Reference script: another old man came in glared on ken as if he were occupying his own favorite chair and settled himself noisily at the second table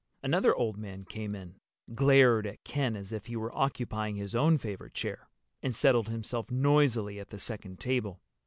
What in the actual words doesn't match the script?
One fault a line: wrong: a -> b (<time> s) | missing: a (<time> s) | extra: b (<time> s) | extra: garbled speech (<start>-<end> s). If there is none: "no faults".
wrong: on -> at (2.5 s)